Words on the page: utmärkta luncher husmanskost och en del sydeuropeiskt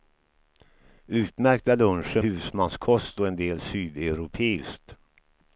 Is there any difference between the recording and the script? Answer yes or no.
no